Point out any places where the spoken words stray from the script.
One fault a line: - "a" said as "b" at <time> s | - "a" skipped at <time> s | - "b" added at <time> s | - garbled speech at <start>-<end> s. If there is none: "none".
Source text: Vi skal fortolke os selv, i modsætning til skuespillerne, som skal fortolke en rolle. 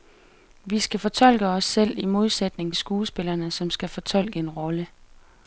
- "til" skipped at 2.7 s